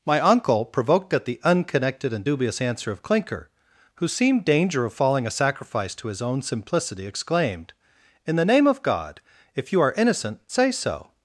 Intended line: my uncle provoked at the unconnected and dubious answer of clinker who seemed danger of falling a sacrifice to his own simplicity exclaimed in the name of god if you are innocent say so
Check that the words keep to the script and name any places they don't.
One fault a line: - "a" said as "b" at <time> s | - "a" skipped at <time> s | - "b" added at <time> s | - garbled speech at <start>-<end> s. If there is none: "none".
none